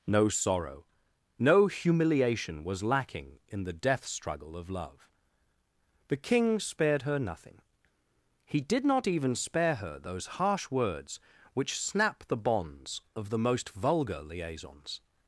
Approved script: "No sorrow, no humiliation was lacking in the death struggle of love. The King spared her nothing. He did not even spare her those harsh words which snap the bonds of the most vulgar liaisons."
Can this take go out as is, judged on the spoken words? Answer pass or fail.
pass